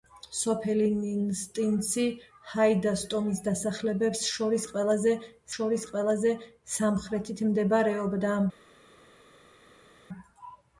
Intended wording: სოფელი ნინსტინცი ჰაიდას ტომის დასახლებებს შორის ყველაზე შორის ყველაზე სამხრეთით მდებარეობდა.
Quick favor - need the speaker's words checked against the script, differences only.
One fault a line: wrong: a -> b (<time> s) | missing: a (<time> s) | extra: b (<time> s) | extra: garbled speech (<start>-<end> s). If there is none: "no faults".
no faults